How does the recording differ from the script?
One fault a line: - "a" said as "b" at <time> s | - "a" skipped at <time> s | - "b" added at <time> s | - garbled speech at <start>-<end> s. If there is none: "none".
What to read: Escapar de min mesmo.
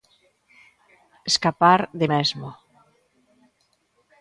- "min" skipped at 2.1 s